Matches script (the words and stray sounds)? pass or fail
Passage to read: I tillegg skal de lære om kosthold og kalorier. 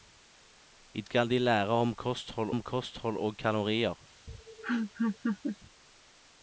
fail